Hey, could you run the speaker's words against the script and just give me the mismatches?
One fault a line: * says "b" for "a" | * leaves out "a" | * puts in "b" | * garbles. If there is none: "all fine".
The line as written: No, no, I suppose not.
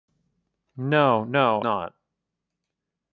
* leaves out "I suppose"